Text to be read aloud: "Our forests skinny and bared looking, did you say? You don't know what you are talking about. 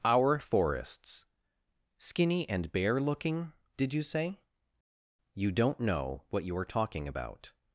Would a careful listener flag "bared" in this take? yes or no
yes